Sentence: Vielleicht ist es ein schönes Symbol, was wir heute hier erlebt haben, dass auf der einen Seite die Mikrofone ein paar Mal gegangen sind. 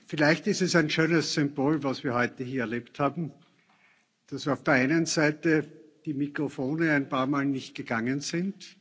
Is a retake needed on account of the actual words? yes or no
yes